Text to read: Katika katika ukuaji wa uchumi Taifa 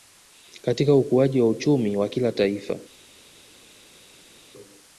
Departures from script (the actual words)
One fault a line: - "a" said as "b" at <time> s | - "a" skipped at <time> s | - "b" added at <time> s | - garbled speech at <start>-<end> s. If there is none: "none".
- "katika" skipped at 0.9 s
- "wa kila" added at 2.0 s